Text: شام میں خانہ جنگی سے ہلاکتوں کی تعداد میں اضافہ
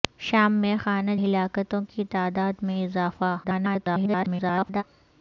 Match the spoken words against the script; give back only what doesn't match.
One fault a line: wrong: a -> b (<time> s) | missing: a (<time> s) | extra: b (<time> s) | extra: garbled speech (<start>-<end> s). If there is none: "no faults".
missing: جنگی سے (1.1 s)
extra: garbled speech (3.4-4.8 s)